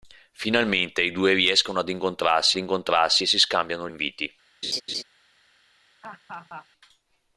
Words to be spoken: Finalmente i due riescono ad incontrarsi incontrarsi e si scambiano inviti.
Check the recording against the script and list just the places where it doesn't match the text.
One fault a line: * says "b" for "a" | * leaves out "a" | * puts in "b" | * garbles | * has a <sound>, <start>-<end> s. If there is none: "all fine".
* has a laugh, 4.6-5.0 s
* has a laugh, 6.0-6.7 s